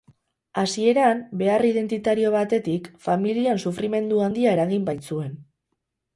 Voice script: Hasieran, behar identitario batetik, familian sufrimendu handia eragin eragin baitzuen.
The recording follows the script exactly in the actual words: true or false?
false